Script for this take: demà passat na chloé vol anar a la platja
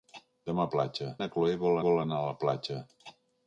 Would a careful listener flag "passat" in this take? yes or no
yes